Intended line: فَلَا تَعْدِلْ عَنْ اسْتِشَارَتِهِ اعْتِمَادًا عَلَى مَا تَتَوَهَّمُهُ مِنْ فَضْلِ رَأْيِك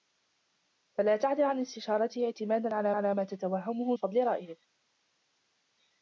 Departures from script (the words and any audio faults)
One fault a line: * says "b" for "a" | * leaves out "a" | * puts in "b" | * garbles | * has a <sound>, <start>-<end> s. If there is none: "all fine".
* puts in "عَلَى"
* leaves out "مِنْ"